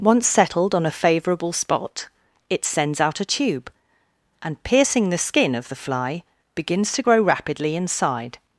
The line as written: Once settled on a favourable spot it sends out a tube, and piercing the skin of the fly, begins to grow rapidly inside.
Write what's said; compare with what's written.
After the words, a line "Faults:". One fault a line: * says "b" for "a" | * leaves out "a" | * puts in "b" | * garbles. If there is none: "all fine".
Once settled on a favourable spot it sends out a tube, and piercing the skin of the fly, begins to grow rapidly inside.
Faults:
all fine